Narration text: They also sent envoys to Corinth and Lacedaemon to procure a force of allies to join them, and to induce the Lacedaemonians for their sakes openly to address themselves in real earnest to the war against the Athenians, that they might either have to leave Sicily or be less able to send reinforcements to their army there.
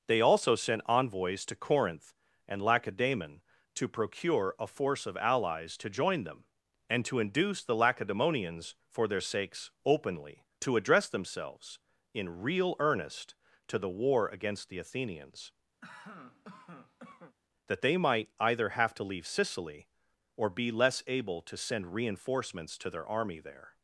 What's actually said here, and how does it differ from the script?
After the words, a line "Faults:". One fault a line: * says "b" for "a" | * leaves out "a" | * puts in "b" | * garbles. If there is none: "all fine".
They also sent envoys to Corinth and Lacedaemon to procure a force of allies to join them, and to induce the Lacedaemonians for their sakes openly to address themselves in real earnest to the war against the Athenians, that they might either have to leave Sicily or be less able to send reinforcements to their army there.
Faults:
all fine